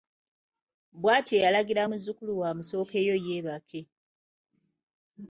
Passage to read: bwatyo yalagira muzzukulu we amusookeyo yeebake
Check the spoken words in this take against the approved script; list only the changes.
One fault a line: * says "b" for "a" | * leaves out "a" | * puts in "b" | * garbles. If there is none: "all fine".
all fine